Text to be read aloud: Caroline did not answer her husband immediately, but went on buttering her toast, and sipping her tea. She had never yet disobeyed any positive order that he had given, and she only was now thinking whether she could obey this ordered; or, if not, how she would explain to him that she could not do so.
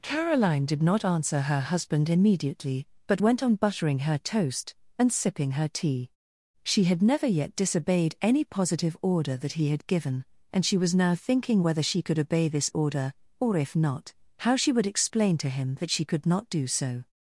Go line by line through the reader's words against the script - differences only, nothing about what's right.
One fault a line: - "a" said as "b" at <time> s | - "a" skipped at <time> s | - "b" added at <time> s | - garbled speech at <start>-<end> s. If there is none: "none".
- "only" skipped at 10.8 s
- "ordered" said as "order" at 12.7 s